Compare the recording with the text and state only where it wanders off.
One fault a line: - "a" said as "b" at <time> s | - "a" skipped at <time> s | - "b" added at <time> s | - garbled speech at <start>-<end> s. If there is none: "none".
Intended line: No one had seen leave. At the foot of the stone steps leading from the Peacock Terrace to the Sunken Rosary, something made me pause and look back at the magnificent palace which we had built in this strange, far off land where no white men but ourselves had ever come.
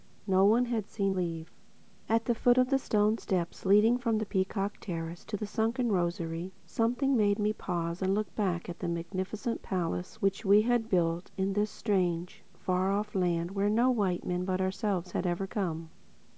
none